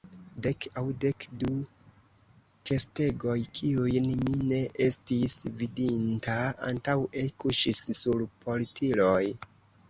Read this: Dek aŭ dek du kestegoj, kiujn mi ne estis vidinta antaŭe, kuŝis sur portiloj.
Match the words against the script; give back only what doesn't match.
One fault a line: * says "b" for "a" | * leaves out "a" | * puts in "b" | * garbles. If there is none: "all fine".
all fine